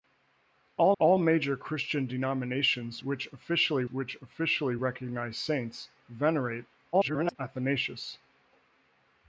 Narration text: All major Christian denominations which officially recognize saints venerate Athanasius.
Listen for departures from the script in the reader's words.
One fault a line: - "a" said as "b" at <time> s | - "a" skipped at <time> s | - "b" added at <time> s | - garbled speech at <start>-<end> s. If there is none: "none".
- "all" added at 1.0 s
- "which officially" added at 3.9 s
- garbled speech at 6.9-7.4 s